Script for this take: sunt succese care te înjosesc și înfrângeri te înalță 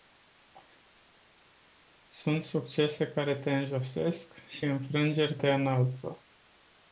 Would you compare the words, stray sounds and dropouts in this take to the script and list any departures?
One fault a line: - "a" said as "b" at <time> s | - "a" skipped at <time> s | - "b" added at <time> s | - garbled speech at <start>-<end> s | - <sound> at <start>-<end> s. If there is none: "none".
none